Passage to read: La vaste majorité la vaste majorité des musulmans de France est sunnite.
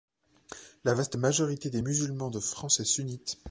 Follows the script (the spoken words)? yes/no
no